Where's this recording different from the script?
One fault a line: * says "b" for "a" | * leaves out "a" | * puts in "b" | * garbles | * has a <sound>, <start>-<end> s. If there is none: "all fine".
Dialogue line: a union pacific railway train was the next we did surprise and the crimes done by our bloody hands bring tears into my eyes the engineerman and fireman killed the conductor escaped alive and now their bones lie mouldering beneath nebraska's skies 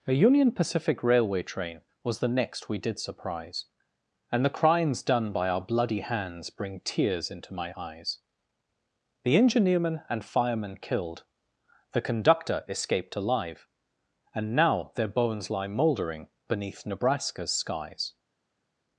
all fine